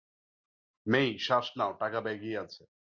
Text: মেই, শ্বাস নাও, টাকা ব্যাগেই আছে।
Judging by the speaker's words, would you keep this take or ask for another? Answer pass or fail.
pass